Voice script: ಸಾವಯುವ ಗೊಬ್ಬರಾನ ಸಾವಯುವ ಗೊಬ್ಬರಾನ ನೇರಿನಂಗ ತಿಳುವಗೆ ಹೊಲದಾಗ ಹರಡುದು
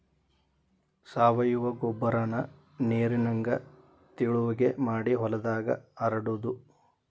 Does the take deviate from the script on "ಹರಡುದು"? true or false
false